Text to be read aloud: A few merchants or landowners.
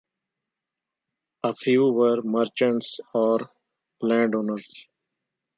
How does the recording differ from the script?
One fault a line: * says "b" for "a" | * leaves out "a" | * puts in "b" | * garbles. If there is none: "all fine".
* puts in "were"